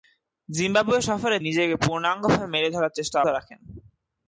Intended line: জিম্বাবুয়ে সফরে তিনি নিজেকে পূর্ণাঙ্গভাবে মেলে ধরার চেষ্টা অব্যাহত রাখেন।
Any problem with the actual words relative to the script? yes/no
yes